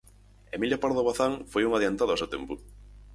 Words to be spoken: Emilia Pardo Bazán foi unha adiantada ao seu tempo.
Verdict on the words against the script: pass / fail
pass